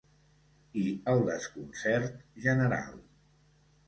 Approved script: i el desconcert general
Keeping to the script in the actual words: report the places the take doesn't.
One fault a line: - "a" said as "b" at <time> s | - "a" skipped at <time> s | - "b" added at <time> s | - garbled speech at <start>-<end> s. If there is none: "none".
none